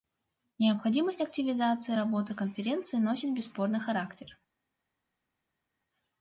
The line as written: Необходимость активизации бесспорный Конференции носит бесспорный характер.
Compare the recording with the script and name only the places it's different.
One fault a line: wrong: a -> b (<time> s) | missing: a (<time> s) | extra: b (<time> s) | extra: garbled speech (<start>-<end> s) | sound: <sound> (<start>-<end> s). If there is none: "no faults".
wrong: бесспорный -> работы (1.9 s)